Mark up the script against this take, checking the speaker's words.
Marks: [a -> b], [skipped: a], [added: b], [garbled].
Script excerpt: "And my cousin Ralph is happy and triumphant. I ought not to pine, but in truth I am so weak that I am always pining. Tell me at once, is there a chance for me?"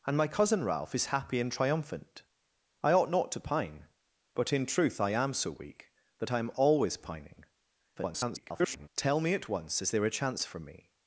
"And my cousin Ralph is happy and triumphant. I ought not to pine, but in truth I am so weak that I am always pining. [garbled] Tell me at once, is there a chance for me?"